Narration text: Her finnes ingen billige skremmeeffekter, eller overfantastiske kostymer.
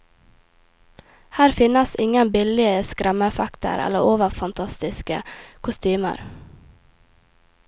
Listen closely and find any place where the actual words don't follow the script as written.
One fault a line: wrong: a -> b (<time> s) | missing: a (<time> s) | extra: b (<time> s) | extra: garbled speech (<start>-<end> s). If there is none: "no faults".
no faults